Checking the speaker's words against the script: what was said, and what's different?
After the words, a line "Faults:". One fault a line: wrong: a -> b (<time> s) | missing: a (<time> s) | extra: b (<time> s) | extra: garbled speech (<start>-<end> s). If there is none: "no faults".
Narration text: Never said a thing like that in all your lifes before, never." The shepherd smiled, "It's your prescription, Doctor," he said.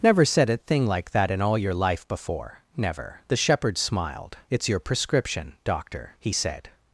Never said a thing like that in all your life before, never." The shepherd smiled, "It's your prescription, Doctor," he said.
Faults:
wrong: lifes -> life (1.7 s)